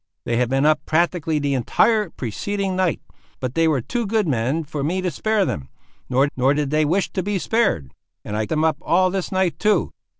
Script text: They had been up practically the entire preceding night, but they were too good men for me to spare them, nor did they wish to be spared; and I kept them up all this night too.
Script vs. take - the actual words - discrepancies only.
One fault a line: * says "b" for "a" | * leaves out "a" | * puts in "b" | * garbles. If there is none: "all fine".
* puts in "nor"
* leaves out "kept"